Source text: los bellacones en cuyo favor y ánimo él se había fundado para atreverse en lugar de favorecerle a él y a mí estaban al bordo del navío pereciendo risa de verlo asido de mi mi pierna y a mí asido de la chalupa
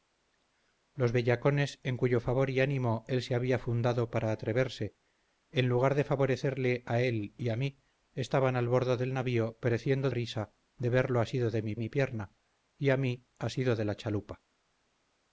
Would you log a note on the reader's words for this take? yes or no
no